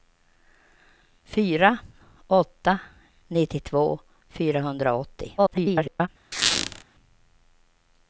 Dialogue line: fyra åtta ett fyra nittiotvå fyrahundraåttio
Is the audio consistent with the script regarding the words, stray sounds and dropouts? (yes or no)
no